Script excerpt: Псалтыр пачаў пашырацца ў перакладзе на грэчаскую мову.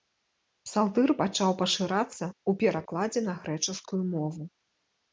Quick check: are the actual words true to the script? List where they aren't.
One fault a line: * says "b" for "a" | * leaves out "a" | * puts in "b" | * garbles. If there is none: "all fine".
all fine